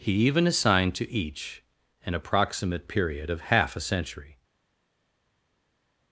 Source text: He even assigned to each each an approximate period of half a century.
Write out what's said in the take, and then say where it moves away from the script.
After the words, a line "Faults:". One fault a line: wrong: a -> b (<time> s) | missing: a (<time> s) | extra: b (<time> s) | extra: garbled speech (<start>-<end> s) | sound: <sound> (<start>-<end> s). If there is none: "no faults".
He even assigned to each an approximate period of half a century.
Faults:
missing: each (1.6 s)